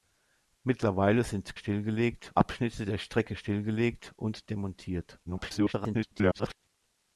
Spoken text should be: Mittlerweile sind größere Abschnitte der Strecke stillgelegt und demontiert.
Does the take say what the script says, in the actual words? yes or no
no